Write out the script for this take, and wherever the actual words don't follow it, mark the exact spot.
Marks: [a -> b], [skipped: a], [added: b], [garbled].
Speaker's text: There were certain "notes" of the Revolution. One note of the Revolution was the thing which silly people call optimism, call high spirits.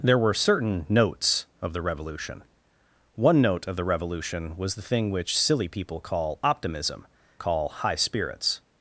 There were certain "notes" of the Revolution. One note of the Revolution was the thing which silly people call optimism, call high spirits.